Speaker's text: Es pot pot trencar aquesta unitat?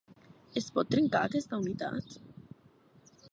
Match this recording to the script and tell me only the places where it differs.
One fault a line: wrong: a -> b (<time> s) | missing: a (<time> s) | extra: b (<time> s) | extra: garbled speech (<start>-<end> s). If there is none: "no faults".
missing: pot (0.9 s)